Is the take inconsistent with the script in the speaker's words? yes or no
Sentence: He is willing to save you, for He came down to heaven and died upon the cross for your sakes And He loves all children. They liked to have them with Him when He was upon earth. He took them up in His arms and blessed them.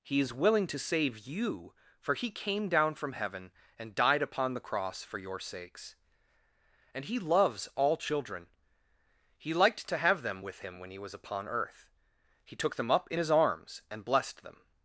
yes